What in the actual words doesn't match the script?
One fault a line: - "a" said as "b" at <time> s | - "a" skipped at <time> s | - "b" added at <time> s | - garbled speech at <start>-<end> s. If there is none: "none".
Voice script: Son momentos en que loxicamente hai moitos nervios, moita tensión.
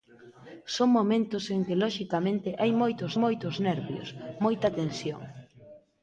- "moitos" added at 3.2 s